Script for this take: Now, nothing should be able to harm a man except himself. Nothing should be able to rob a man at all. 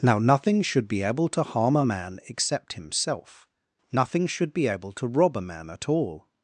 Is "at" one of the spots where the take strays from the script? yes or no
no